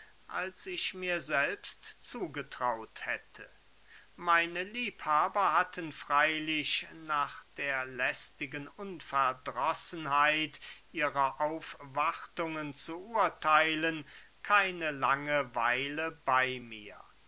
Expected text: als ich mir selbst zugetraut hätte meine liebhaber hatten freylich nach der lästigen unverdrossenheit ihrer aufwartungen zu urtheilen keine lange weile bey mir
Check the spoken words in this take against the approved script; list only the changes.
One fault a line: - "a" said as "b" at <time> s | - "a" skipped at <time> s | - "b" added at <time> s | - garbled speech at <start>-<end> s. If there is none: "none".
none